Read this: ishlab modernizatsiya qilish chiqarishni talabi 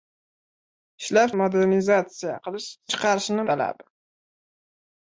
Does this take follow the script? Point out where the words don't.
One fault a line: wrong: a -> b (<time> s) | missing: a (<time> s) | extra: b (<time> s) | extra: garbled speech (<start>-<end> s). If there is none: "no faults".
no faults